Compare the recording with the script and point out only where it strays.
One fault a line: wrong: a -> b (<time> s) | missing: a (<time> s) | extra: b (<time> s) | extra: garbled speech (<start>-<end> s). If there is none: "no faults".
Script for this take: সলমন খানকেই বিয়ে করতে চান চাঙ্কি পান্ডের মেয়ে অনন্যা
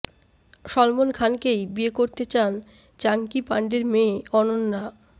no faults